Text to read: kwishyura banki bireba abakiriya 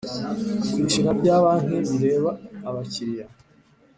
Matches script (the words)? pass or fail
fail